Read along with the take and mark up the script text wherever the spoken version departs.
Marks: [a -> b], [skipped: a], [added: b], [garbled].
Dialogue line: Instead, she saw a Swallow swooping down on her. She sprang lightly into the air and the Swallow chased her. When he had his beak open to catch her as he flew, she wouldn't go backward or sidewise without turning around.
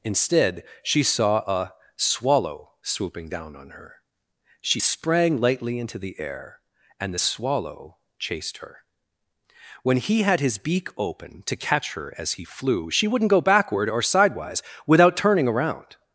Instead, she saw a Swallow swooping down on her. She sprang lightly into the air and the Swallow chased her. When he had his beak open to catch her as he flew, she wouldn't go backward or sidewise without turning around.